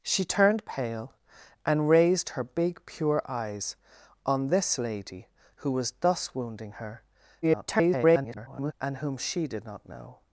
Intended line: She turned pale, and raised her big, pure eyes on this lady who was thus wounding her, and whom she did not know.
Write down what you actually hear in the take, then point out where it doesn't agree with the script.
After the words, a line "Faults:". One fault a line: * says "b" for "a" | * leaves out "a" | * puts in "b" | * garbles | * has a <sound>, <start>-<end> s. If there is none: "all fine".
She turned pale, and raised her big, pure eyes on this lady who was thus wounding her, [garbled] and whom she did not know.
Faults:
* garbles